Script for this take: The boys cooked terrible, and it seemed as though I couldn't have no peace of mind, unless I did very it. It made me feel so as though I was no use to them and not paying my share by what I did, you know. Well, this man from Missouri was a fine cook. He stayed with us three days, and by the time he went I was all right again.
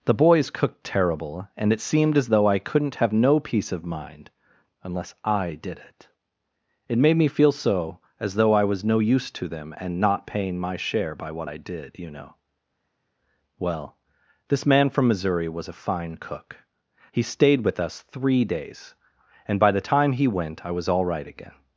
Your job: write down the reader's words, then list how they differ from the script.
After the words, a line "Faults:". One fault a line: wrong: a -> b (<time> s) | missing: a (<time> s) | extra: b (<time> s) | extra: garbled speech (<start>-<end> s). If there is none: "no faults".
The boys cooked terrible, and it seemed as though I couldn't have no peace of mind, unless I did it. It made me feel so as though I was no use to them and not paying my share by what I did, you know. Well, this man from Missouri was a fine cook. He stayed with us three days, and by the time he went I was all right again.
Faults:
missing: very (5.8 s)